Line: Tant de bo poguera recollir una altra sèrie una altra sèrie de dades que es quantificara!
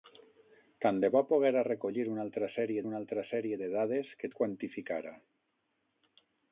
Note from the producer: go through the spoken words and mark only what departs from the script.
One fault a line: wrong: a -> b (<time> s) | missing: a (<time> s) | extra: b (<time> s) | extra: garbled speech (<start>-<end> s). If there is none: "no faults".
no faults